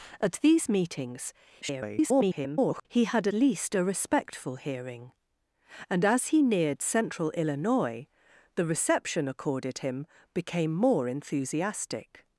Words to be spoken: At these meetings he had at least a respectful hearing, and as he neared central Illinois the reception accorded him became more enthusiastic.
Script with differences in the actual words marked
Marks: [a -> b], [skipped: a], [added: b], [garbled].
At these meetings [garbled] he had [skipped: at] least a respectful hearing, and as he neared central Illinois the reception accorded him became more enthusiastic.